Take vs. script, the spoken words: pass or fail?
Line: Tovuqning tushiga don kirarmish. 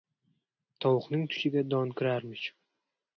pass